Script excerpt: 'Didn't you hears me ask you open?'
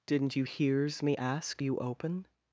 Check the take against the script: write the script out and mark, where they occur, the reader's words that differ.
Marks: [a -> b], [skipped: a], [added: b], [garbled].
'Didn't you hears me ask you open?'